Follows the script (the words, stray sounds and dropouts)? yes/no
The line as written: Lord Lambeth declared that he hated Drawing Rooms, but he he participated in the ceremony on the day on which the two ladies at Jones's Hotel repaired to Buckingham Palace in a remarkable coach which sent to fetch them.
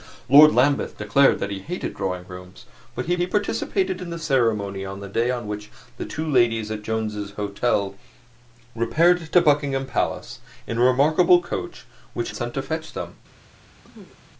no